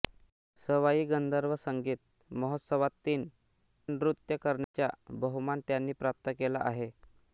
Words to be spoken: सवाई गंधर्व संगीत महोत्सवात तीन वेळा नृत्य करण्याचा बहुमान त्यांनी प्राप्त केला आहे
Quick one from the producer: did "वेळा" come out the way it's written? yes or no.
no